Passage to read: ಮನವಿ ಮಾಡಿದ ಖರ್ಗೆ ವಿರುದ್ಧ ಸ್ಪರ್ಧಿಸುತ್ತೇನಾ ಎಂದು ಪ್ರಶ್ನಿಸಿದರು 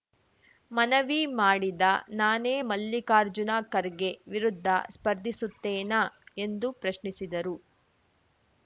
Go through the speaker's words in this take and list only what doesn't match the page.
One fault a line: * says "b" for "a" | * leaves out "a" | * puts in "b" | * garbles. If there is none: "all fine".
* puts in "ನಾನೇ ಮಲ್ಲಿಕಾರ್ಜುನ"